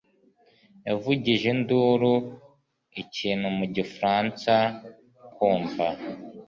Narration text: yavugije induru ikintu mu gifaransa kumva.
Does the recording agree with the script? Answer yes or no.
yes